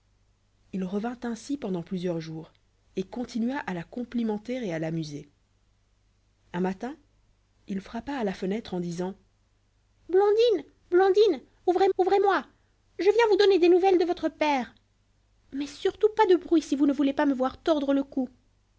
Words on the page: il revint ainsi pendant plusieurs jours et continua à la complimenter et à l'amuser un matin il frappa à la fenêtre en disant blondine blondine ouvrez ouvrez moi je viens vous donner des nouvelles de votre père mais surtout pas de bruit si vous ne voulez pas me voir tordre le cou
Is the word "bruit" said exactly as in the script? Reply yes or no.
yes